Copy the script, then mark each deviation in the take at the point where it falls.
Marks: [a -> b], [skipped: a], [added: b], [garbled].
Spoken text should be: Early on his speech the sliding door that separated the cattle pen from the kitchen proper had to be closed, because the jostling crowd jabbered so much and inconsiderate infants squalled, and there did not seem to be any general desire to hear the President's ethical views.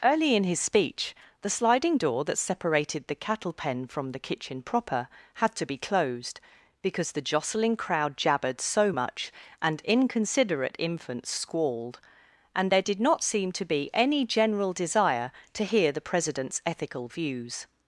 Early [on -> in] his speech the sliding door that separated the cattle pen from the kitchen proper had to be closed, because the jostling crowd jabbered so much and inconsiderate infants squalled, and there did not seem to be any general desire to hear the President's ethical views.